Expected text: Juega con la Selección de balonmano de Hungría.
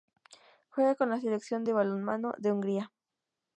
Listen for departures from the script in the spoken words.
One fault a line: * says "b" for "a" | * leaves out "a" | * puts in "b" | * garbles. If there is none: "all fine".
all fine